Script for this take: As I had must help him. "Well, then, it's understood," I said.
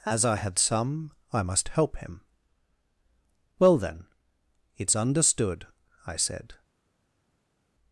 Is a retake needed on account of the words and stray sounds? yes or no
yes